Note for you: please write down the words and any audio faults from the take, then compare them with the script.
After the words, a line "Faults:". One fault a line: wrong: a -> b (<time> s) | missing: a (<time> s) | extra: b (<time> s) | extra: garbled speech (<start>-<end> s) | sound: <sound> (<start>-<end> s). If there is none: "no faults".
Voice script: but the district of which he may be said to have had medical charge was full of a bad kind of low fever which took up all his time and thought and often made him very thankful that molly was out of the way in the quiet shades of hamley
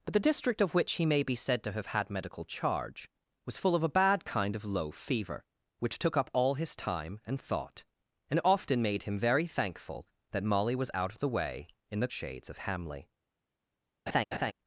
but the district of which he may be said to have had medical charge was full of a bad kind of low fever which took up all his time and thought and often made him very thankful that molly was out of the way in the shades of hamley
Faults:
missing: quiet (12.1 s)
sound: laugh (14.1-14.5 s)